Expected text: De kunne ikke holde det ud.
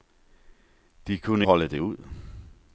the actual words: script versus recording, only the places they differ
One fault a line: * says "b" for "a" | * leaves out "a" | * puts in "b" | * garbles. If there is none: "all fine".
* leaves out "ikke"